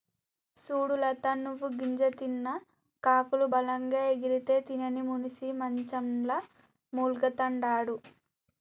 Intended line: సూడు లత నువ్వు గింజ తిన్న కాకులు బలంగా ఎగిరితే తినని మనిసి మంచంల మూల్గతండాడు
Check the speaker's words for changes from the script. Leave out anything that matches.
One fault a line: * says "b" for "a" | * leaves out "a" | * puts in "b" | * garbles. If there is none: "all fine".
all fine